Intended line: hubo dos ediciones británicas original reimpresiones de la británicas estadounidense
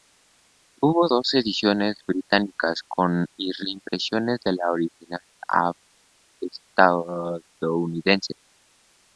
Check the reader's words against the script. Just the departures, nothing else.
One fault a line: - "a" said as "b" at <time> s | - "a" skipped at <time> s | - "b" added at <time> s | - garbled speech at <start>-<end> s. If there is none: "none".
- "original" said as "con" at 2.9 s
- "británicas" said as "original" at 4.7 s